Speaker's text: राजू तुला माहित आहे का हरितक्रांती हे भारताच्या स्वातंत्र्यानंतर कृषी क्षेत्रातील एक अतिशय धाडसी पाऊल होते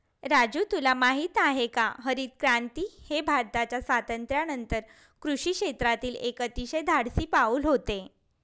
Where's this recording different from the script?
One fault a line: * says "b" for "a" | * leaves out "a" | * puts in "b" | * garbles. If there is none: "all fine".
all fine